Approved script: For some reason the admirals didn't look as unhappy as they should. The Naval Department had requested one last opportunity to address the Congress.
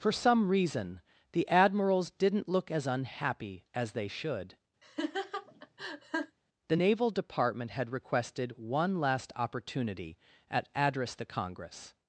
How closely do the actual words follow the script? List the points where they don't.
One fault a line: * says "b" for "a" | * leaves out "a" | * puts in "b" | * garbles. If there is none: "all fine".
* says "at" for "to"